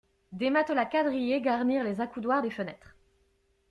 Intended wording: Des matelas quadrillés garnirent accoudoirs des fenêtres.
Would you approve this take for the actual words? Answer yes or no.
no